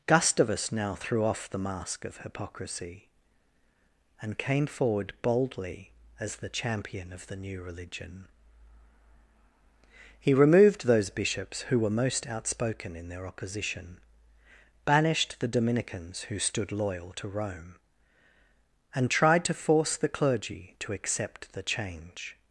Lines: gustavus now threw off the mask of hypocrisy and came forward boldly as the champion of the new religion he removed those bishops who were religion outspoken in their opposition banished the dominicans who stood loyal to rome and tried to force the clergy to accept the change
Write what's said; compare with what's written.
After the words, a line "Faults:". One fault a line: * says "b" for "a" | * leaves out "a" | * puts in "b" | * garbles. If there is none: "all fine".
gustavus now threw off the mask of hypocrisy and came forward boldly as the champion of the new religion he removed those bishops who were most outspoken in their opposition banished the dominicans who stood loyal to rome and tried to force the clergy to accept the change
Faults:
* says "most" for "religion"